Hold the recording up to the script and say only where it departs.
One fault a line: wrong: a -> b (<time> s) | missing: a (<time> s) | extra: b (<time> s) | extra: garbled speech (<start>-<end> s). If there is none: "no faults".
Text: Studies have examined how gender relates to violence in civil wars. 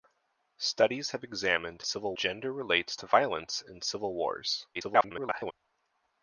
wrong: how -> civil (1.8 s)
extra: garbled speech (4.7-5.5 s)